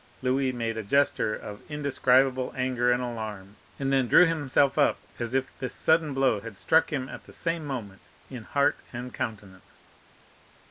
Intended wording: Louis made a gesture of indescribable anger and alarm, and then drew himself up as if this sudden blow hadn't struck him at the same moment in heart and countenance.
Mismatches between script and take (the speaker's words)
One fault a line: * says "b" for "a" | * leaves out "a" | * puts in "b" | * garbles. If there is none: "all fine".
* says "had" for "hadn't"